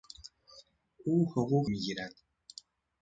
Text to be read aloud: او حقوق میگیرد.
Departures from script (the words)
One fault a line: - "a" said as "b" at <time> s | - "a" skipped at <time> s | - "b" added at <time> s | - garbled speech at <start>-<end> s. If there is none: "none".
none